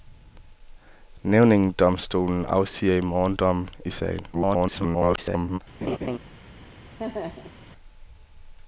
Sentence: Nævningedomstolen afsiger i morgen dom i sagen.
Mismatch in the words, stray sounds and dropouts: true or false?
true